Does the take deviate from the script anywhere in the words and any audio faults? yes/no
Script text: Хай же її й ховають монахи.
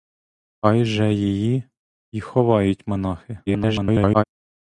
yes